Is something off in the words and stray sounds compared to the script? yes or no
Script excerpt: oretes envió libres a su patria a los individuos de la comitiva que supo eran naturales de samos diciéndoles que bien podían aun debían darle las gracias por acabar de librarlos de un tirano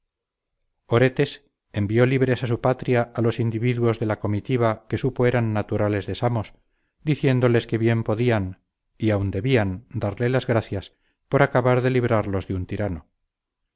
yes